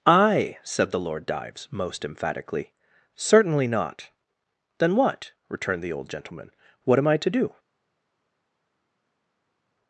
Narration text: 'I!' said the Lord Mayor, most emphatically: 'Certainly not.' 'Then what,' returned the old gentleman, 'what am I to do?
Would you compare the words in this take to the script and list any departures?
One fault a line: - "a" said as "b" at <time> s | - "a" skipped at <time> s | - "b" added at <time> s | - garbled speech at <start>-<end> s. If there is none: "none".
- "Mayor" said as "Dives" at 1.3 s